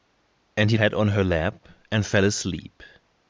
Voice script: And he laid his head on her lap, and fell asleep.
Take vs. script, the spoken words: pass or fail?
fail